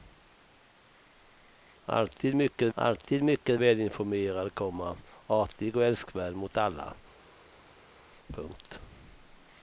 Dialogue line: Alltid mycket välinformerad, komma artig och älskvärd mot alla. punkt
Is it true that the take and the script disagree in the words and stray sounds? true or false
true